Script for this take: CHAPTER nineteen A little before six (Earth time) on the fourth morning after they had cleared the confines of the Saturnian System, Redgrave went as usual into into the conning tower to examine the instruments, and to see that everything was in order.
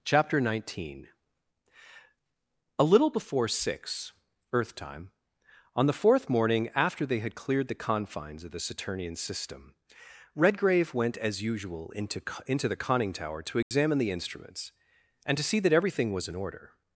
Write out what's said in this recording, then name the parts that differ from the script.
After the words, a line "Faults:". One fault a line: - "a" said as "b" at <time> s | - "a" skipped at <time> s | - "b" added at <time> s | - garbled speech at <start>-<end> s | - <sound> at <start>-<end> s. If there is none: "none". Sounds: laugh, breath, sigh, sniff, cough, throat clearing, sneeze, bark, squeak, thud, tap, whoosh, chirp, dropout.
CHAPTER nineteen A little before six (Earth time) on the fourth morning after they had cleared the confines of the Saturnian System, Redgrave went as usual into into the conning tower to examine the instruments, and to see that everything was in order.
Faults:
- dropout at 13.6-13.7 s